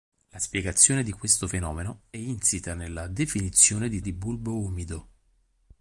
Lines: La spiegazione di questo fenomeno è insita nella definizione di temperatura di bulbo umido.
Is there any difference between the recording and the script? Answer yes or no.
yes